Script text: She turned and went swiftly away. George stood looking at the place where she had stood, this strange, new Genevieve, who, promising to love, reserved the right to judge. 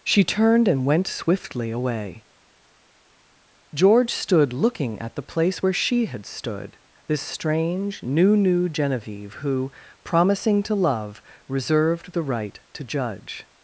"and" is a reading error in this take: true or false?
false